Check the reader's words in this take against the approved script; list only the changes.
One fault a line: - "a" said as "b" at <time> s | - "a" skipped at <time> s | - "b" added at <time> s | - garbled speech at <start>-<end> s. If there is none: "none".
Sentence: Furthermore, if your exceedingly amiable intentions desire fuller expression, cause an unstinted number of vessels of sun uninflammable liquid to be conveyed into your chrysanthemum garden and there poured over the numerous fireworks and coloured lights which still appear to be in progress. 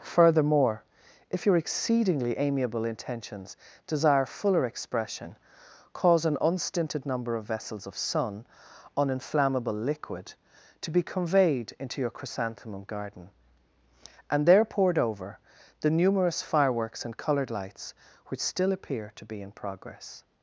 none